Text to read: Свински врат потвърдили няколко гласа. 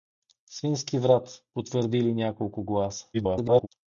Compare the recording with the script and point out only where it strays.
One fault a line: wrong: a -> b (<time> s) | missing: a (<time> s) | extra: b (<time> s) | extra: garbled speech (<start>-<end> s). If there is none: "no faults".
extra: garbled speech (3.1-3.7 s)